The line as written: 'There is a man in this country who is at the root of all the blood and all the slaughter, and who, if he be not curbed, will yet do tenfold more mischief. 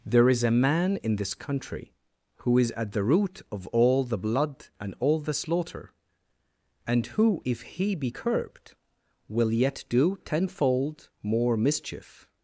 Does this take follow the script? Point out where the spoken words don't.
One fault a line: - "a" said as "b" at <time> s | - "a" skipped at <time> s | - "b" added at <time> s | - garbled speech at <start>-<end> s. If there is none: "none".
- "not" skipped at 8.1 s